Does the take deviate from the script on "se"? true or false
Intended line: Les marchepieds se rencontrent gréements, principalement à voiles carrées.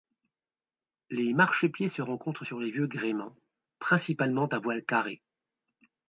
false